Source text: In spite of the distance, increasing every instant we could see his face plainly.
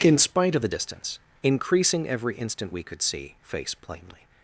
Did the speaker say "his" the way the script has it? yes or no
no